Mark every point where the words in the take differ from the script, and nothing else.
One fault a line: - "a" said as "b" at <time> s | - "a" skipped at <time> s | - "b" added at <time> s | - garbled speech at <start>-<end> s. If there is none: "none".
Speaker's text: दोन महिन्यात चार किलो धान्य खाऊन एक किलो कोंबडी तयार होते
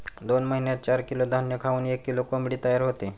none